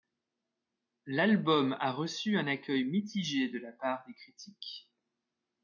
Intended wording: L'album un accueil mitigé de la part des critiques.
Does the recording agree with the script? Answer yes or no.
no